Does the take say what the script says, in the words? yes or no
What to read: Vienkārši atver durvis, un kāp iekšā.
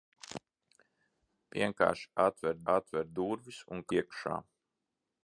no